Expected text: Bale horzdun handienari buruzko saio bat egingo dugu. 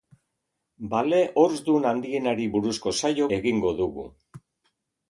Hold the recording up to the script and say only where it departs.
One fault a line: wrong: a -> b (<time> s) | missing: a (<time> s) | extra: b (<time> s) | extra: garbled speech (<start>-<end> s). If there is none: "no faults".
missing: bat (3.3 s)